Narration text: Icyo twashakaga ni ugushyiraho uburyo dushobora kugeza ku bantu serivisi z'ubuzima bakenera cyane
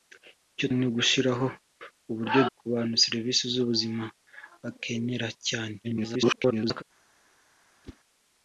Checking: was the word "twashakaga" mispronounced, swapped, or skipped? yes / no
yes